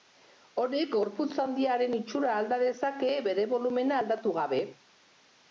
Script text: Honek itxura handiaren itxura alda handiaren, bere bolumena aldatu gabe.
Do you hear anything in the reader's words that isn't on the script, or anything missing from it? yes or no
yes